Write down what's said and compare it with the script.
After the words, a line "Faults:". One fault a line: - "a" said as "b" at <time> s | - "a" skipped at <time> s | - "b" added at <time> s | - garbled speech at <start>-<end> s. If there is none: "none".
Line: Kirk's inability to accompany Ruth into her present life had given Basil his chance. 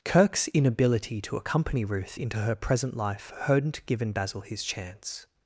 Kirk's inability to accompany Ruth into her present life hadn't given Basil his chance.
Faults:
- "had" said as "hadn't" at 3.4 s